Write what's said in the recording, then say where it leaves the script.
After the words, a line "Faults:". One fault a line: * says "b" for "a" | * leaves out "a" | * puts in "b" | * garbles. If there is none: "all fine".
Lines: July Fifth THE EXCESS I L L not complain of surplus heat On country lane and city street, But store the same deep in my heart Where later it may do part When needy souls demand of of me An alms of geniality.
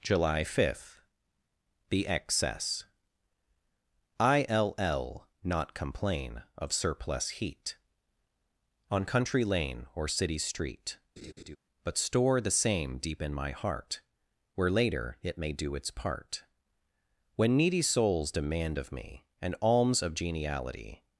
July Fifth THE EXCESS I L L not complain of surplus heat On country lane or city street, But store the same deep in my heart Where later it may do its part When needy souls demand of me An alms of geniality.
Faults:
* says "or" for "and"
* puts in "its"
* leaves out "of"